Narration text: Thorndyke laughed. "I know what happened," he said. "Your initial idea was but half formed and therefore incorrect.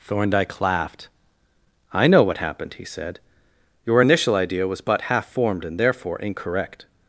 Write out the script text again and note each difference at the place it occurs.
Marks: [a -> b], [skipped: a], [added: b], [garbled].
Thorndyke laughed. "I know what happened," he said. "Your initial idea was but half formed and therefore incorrect.